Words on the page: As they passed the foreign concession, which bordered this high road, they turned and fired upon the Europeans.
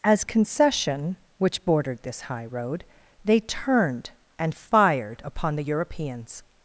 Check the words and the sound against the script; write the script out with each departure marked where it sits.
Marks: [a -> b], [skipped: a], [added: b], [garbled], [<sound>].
As [skipped: they passed the foreign] concession, which bordered this high road, they turned and fired upon the Europeans.